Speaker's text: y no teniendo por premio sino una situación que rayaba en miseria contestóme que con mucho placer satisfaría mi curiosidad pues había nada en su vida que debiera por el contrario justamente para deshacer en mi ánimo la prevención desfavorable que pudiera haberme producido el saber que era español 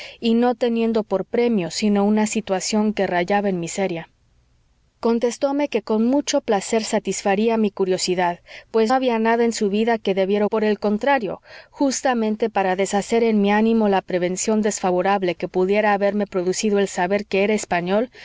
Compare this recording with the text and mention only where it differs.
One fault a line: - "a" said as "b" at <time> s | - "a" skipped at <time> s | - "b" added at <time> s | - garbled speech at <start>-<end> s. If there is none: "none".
none